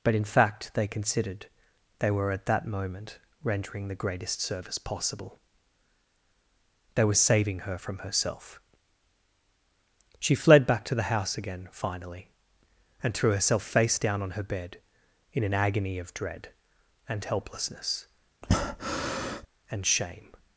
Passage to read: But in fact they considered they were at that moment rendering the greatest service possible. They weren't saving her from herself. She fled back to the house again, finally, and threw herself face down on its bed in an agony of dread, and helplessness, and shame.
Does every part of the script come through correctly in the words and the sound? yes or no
no